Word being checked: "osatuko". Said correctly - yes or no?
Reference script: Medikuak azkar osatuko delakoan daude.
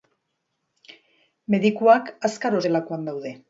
no